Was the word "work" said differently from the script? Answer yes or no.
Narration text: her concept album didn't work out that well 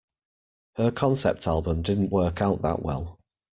no